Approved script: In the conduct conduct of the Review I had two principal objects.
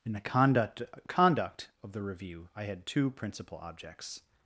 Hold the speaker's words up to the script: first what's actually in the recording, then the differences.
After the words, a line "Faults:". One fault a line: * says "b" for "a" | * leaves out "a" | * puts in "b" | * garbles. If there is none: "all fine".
In the conduct conduct of the Review I had two principal objects.
Faults:
all fine